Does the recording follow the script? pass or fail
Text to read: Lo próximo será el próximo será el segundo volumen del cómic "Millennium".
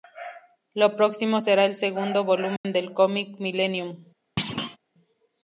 fail